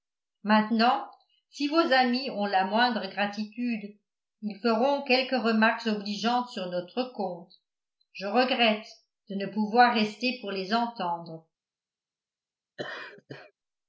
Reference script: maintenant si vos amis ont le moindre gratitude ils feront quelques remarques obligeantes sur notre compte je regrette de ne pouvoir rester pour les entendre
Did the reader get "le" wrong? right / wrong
wrong